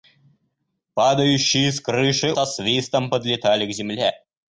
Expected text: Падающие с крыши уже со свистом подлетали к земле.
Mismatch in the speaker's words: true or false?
true